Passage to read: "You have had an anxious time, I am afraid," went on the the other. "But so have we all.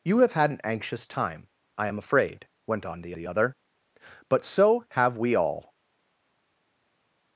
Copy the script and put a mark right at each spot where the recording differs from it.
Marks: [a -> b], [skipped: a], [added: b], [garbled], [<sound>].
"You have had an anxious time, I am afraid," went on the the other. "But so have we all.